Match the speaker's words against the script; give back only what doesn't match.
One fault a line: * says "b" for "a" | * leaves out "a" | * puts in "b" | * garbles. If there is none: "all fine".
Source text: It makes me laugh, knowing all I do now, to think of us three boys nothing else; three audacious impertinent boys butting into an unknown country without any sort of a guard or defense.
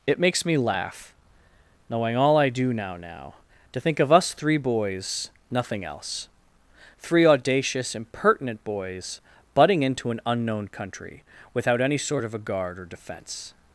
* puts in "now"